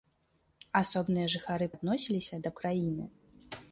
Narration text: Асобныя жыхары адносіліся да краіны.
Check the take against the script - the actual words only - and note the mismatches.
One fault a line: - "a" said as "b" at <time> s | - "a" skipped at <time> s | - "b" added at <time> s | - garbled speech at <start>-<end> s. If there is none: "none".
none